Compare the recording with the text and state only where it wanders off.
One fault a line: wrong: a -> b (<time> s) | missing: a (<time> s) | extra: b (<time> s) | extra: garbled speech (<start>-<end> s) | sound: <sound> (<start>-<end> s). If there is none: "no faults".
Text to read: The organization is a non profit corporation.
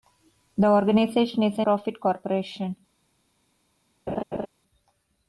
missing: non (1.7 s)
sound: laugh (4.1-4.5 s)